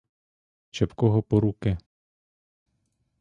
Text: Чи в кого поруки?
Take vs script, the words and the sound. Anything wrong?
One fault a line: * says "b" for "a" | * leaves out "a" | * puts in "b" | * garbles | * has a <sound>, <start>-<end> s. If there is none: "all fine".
all fine